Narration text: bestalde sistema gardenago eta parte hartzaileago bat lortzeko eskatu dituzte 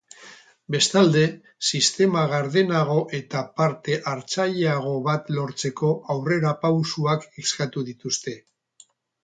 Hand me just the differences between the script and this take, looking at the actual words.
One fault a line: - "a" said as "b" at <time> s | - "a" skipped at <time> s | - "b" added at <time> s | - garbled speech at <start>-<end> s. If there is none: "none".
- "aurrerapausoak" added at 6.2 s